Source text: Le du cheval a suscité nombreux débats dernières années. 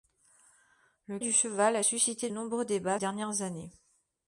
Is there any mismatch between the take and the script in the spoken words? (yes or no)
no